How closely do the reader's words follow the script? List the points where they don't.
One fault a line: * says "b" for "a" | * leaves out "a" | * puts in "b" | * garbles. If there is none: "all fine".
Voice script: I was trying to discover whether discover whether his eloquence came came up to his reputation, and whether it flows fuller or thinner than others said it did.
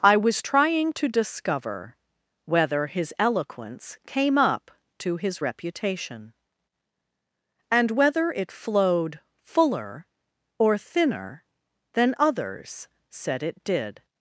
* leaves out "discover whether"
* leaves out "came"
* says "flowed" for "flows"